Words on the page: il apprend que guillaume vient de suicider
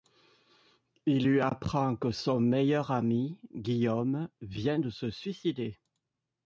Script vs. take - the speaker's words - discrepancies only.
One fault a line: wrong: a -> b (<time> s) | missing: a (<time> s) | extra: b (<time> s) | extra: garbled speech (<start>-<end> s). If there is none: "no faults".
extra: lui (1.3 s)
extra: son meilleur ami (2.1 s)
extra: se (4.9 s)